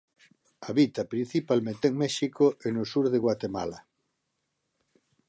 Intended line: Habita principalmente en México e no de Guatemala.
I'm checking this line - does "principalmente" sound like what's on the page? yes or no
yes